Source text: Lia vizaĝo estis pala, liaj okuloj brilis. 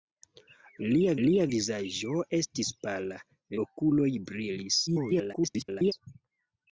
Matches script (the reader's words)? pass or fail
fail